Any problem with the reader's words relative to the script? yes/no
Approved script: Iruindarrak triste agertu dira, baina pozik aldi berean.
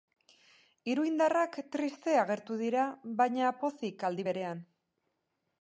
no